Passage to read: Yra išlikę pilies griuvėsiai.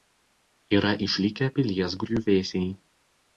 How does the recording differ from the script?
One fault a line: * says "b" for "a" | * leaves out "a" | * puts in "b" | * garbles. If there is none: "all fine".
all fine